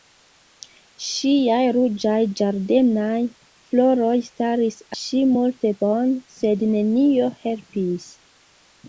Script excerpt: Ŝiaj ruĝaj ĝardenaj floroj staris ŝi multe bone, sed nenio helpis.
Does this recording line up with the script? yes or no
yes